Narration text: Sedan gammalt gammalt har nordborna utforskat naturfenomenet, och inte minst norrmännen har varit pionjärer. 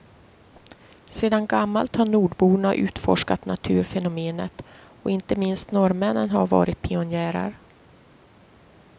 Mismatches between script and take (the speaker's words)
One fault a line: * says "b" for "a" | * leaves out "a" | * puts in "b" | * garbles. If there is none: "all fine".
* leaves out "gammalt"